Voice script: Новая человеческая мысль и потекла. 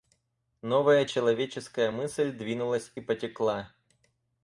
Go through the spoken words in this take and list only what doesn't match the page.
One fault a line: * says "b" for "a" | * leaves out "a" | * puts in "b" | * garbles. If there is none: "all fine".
* puts in "двинулась"